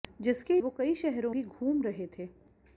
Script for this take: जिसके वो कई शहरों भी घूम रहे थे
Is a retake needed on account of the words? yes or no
no